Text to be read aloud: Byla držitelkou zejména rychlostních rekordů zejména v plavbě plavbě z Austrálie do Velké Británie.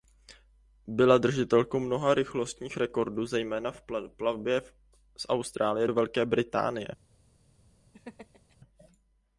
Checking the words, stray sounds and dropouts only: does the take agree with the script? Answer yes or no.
no